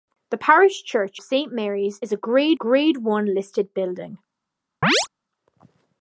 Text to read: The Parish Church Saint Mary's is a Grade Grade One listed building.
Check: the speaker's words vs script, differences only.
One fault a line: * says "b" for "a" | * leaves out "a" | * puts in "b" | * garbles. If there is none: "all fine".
all fine